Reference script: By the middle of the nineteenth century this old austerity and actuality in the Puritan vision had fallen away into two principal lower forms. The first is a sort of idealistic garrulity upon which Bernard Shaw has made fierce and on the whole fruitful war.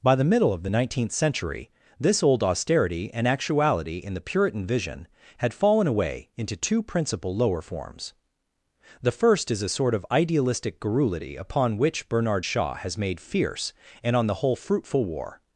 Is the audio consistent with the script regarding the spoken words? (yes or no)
yes